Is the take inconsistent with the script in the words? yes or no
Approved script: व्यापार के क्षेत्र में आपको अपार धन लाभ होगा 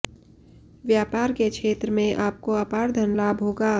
no